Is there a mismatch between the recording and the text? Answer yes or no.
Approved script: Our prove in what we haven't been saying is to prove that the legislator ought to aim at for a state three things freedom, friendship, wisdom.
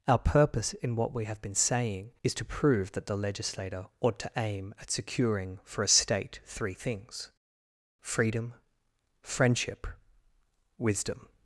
yes